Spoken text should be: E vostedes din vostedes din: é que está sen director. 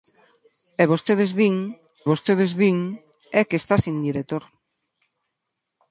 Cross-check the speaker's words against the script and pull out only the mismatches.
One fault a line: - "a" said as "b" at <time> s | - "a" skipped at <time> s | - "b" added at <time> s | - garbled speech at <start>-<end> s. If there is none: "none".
none